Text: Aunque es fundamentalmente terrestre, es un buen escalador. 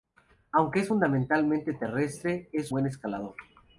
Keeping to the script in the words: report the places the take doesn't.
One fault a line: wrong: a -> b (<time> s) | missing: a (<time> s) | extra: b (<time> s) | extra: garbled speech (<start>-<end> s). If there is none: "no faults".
missing: un (2.7 s)